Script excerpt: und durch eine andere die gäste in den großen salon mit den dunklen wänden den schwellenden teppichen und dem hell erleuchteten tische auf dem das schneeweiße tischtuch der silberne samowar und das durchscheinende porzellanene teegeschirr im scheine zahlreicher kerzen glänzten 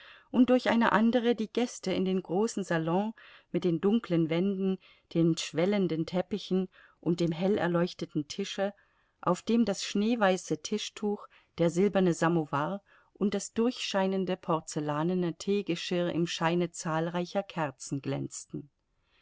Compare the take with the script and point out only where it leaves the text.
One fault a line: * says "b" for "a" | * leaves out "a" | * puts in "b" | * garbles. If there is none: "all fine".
all fine